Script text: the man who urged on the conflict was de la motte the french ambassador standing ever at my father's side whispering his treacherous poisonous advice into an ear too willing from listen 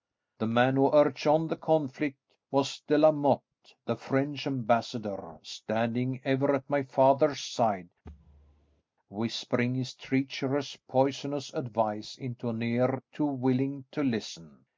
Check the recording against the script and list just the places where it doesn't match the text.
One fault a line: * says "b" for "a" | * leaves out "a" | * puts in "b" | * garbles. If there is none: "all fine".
* says "to" for "from"